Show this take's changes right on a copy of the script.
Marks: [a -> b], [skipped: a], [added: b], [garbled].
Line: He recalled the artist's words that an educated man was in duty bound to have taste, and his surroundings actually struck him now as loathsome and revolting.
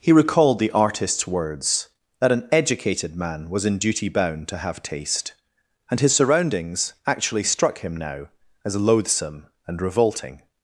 He recalled the artist's words that an educated man was in duty bound to have taste, and his surroundings actually struck him now as loathsome and revolting.